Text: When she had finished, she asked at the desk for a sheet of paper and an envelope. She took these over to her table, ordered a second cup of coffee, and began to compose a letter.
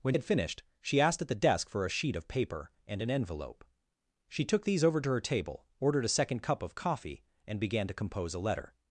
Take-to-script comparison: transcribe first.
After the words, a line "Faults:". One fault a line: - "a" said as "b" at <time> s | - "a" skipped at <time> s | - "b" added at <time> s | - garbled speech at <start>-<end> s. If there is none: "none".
When had finished, she asked at the desk for a sheet of paper and an envelope. She took these over to her table, ordered a second cup of coffee, and began to compose a letter.
Faults:
- "she" skipped at 0.1 s